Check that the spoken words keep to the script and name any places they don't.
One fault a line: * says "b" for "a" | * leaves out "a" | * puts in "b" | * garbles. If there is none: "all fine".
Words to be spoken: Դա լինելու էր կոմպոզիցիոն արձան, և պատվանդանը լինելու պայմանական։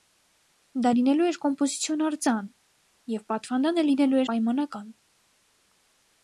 all fine